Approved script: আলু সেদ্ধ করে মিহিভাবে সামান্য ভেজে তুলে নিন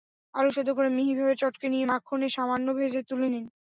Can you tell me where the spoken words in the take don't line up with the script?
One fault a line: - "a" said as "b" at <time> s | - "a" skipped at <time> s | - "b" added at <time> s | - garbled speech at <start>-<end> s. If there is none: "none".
- "চটকে নিয়ে মাখনে" added at 1.4 s